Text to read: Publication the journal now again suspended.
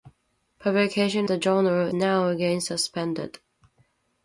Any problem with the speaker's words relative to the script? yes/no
no